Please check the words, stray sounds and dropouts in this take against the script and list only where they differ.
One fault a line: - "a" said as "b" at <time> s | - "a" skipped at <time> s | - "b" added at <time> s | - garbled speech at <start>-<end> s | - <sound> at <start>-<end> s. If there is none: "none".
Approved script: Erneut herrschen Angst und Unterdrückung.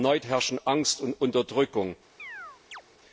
- chirp at 2.2-2.8 s